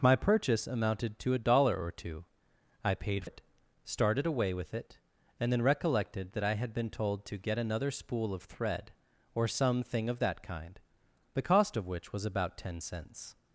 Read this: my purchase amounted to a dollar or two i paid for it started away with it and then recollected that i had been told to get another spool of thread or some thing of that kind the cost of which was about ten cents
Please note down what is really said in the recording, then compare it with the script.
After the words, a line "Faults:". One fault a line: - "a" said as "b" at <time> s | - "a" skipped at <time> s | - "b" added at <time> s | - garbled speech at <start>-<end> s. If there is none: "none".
my purchase amounted to a dollar or two i paid it started away with it and then recollected that i had been told to get another spool of thread or some thing of that kind the cost of which was about ten cents
Faults:
- "for" skipped at 3.2 s